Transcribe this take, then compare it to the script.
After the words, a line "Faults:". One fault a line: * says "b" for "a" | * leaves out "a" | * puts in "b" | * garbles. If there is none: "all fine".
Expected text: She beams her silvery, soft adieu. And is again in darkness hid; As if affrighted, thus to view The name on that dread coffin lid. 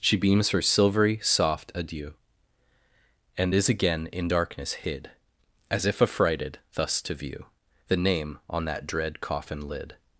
She beams her silvery, soft adieu. And is again in darkness hid; As if affrighted, thus to view The name on that dread coffin lid.
Faults:
all fine